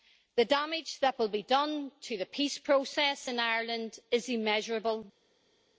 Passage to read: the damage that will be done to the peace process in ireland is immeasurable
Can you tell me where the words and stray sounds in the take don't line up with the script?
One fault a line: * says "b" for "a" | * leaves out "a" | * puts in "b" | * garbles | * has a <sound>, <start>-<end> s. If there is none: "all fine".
all fine